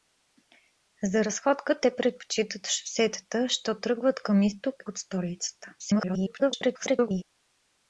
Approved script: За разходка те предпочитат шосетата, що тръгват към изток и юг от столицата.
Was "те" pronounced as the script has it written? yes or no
yes